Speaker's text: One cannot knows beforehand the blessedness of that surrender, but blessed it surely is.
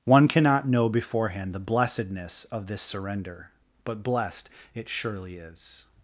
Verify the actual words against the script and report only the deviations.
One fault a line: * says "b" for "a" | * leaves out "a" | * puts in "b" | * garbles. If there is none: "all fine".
* says "know" for "knows"
* says "this" for "that"